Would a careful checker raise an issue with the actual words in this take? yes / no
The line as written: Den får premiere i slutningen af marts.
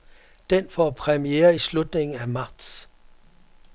no